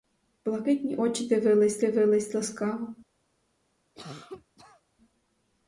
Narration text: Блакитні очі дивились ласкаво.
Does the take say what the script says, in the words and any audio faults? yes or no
no